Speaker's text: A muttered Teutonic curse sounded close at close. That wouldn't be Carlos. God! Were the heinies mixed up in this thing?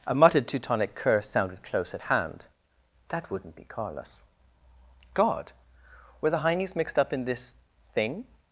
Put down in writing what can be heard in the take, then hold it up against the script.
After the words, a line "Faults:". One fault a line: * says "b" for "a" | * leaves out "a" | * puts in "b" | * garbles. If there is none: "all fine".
A muttered Teutonic curse sounded close at hand. That wouldn't be Carlos. God! Were the heinies mixed up in this thing?
Faults:
* says "hand" for "close"